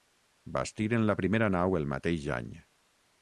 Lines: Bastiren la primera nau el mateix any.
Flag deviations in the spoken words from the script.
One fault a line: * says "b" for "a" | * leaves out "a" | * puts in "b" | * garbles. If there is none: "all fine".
all fine